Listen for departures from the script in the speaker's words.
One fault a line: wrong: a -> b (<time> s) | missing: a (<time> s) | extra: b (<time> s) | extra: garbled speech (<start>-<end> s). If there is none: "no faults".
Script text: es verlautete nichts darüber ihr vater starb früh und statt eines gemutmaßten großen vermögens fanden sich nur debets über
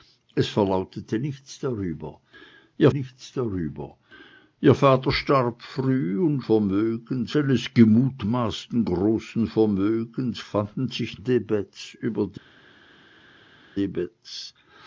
extra: nichts darüber ihr (2.9 s)
wrong: statt -> vermögens (6.4 s)
missing: nur (11.2 s)